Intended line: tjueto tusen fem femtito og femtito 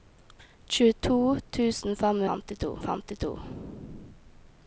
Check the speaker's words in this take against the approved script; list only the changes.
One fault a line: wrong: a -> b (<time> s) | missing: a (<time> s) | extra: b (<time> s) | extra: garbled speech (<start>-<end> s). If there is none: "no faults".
no faults